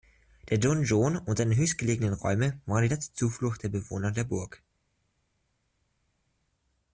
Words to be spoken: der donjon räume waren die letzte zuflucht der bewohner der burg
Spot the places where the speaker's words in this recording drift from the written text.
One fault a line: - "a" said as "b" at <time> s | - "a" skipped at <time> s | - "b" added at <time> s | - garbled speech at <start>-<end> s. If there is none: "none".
- "und seine höchstgelegenen" added at 1.1 s